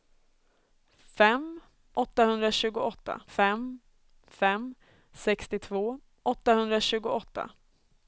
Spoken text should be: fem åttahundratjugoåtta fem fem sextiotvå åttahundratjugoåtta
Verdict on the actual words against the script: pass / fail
pass